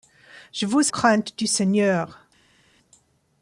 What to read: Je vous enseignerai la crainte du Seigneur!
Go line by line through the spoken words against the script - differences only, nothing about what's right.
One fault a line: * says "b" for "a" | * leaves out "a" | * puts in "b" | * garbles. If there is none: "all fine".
* leaves out "enseignerai la"